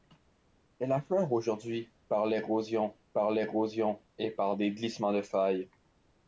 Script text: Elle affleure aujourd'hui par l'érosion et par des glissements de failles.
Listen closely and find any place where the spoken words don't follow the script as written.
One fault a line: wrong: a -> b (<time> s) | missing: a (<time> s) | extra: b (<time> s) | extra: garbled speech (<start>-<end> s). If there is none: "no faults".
extra: par l'érosion (3.1 s)